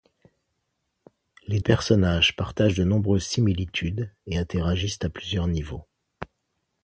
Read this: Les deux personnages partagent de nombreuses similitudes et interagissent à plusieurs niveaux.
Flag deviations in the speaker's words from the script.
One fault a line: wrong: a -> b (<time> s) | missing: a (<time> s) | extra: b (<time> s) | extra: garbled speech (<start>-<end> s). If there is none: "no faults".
missing: deux (1.6 s)